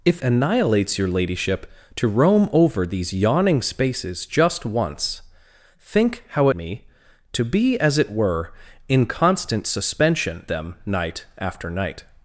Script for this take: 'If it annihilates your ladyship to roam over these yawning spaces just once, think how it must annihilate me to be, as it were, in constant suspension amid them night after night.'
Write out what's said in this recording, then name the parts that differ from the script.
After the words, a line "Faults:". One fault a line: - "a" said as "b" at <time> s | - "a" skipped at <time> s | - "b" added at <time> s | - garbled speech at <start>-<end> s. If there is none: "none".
'If annihilates your ladyship to roam over these yawning spaces just once, think how me to be, as it were, in constant suspension them night after night.'
Faults:
- "it" skipped at 0.2 s
- "it must annihilate" skipped at 6.5 s
- "amid" skipped at 10.5 s